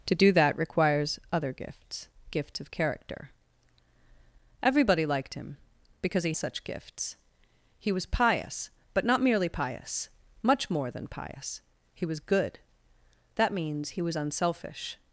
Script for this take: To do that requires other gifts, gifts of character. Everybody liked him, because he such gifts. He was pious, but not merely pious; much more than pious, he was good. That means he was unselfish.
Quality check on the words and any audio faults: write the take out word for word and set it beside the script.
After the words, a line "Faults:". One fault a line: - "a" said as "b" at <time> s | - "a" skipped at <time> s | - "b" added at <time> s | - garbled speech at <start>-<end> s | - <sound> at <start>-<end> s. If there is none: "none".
To do that requires other gifts, gifts of character. Everybody liked him, because he such gifts. He was pious, but not merely pious; much more than pious, he was good. That means he was unselfish.
Faults:
none